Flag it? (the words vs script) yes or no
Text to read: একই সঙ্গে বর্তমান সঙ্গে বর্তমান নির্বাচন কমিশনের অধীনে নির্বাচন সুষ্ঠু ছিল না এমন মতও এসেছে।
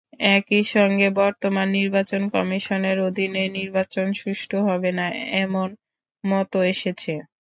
yes